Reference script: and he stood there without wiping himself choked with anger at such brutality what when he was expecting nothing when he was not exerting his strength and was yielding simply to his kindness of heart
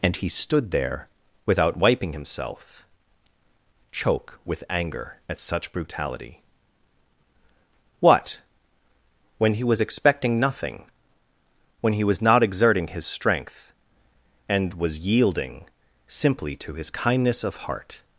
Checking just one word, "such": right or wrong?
right